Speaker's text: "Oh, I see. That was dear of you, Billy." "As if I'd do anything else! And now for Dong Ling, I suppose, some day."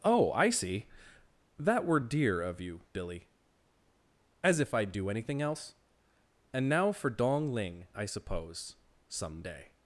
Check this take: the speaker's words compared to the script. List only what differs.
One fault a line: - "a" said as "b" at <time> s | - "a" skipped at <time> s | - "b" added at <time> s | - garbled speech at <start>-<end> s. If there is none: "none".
- "was" said as "were" at 1.9 s